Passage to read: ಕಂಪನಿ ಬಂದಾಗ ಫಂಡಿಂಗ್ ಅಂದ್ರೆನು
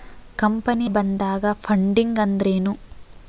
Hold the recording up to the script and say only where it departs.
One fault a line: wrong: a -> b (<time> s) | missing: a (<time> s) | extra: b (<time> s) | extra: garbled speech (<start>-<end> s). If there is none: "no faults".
no faults